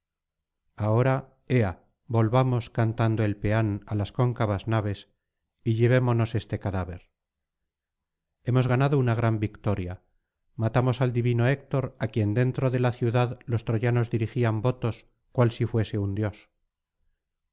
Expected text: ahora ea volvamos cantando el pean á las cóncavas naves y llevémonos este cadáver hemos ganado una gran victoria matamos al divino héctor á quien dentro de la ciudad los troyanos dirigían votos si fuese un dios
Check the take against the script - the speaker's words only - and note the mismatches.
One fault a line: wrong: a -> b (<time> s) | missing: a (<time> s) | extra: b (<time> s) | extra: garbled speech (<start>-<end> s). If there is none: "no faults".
extra: cual (15.3 s)